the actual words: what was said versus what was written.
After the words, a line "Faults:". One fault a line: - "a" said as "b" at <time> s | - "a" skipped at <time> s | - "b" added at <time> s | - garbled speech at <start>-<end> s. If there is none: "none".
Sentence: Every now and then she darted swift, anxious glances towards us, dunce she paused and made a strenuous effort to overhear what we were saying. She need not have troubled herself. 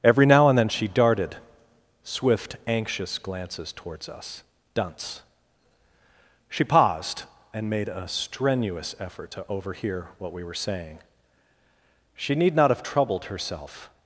Every now and then she darted swift, anxious glances towards us, dunce she paused and made a strenuous effort to overhear what we were saying. She need not have troubled herself.
Faults:
none